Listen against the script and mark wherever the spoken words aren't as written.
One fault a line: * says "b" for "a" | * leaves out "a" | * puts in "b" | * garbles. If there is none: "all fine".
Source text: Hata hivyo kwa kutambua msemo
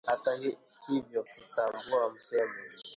* leaves out "kwa"